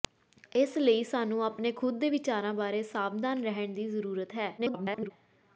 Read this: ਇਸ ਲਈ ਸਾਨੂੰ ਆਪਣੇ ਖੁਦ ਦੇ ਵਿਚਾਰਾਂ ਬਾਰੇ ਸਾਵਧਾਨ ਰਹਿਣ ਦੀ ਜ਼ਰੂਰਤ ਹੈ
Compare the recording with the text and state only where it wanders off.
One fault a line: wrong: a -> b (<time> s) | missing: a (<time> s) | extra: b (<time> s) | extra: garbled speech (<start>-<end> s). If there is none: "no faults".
extra: garbled speech (4.6-5.1 s)